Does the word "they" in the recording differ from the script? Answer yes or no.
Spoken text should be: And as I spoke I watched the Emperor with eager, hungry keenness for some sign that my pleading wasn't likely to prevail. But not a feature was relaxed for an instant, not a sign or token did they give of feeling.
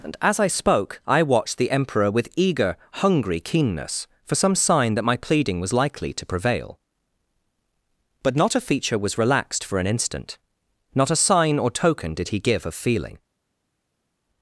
yes